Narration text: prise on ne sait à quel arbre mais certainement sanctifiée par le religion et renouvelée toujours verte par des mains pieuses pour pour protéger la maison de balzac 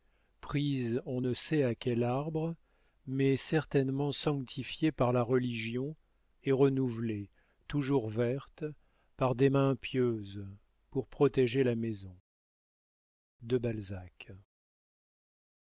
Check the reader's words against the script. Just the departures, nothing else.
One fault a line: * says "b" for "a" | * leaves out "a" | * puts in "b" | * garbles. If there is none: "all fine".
* says "la" for "le"
* leaves out "pour"